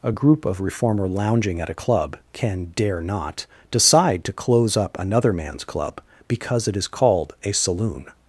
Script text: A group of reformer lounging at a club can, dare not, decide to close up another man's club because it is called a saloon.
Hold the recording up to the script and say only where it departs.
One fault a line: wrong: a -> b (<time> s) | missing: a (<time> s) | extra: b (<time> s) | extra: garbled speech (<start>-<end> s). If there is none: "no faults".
no faults